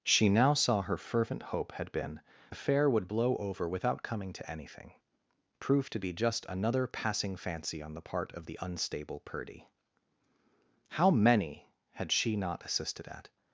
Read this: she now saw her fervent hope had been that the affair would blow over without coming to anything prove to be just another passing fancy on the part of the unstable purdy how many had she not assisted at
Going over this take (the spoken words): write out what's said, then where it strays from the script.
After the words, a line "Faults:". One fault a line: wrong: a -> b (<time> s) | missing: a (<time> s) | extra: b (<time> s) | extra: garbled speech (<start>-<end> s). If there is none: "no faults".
she now saw her fervent hope had been affair would blow over without coming to anything prove to be just another passing fancy on the part of the unstable purdy how many had she not assisted at
Faults:
missing: that the (2.2 s)